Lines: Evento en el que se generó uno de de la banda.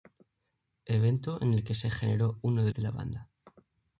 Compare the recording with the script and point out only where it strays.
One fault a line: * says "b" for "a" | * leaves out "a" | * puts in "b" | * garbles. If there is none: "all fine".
all fine